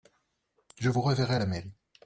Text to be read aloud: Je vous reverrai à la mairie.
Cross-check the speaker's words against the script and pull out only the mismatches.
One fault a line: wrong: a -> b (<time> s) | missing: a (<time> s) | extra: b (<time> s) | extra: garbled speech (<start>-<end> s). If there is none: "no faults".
no faults